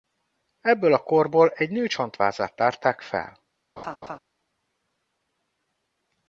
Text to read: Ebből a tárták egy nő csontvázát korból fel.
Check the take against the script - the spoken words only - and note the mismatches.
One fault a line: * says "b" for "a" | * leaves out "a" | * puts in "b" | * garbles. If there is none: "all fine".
* says "korból" for "tárták"
* says "tárták" for "korból"